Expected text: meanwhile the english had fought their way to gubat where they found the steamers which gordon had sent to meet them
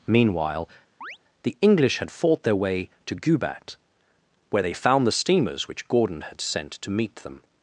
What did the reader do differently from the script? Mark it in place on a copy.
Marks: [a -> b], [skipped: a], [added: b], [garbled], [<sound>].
meanwhile [chirp] the english had fought their way to gubat where they found the steamers which gordon had sent to meet them